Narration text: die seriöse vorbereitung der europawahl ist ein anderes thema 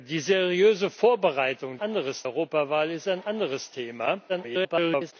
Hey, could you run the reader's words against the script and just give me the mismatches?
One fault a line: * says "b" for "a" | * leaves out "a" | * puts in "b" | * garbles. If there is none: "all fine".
* says "anderes" for "der"
* garbles